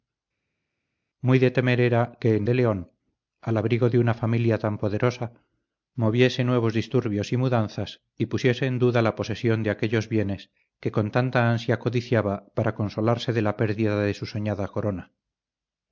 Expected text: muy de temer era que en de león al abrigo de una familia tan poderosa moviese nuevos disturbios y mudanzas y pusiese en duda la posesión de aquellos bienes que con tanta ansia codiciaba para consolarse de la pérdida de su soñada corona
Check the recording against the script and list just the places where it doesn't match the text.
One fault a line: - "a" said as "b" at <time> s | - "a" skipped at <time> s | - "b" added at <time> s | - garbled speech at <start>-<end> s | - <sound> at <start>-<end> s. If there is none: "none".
none